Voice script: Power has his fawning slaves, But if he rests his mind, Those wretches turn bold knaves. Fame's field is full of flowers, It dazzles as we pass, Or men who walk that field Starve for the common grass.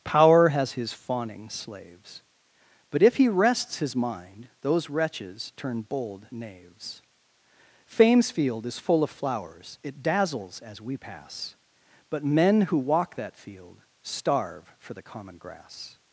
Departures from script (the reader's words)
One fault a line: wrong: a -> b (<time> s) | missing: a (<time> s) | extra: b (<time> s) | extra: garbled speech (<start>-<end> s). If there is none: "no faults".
wrong: Or -> But (12.1 s)